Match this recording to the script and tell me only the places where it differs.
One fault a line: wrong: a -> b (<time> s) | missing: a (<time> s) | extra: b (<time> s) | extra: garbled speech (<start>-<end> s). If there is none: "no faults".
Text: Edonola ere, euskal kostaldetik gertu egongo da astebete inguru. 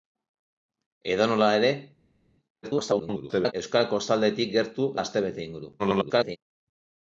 extra: garbled speech (2.6-3.5 s)
missing: egongo (4.9 s)
extra: garbled speech (5.8-6.4 s)